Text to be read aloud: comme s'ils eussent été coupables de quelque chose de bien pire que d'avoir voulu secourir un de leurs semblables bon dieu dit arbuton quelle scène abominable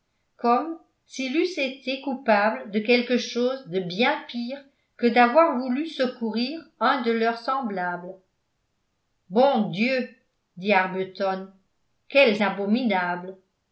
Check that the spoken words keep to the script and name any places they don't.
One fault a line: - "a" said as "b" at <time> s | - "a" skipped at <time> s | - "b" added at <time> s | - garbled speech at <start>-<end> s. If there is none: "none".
- "scène" skipped at 12.4 s